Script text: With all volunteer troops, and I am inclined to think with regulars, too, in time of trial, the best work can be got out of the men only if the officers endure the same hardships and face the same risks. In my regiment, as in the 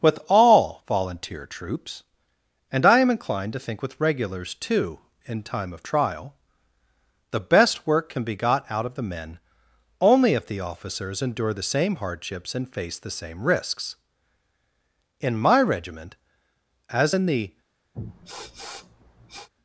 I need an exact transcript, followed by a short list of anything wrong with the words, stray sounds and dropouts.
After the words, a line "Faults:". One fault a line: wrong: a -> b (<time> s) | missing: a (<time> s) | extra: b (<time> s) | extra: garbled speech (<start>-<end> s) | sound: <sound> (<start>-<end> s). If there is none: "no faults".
With all volunteer troops, and I am inclined to think with regulars, too, in time of trial, the best work can be got out of the men only if the officers endure the same hardships and face the same risks. In my regiment, as in the
Faults:
sound: sniff (17.9-19.5 s)